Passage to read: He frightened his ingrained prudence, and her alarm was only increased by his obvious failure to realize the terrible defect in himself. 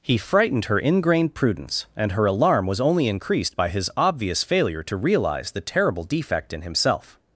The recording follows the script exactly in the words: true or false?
false